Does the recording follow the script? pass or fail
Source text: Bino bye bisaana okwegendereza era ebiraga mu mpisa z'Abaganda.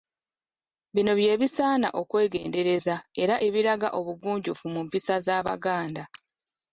fail